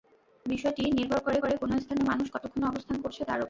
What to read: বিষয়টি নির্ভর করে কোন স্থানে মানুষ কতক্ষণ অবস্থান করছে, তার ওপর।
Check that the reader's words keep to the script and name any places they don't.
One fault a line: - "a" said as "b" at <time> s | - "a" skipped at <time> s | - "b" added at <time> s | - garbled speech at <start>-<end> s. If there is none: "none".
- "করে" added at 1.3 s